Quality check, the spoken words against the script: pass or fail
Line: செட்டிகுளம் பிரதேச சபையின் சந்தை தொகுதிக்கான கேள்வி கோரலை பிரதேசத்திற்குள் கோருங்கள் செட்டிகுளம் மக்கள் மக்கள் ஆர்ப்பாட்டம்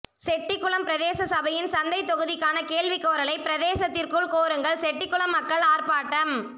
fail